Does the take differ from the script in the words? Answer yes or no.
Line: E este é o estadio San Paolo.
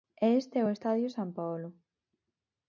no